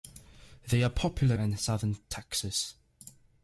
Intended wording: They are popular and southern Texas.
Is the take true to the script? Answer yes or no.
yes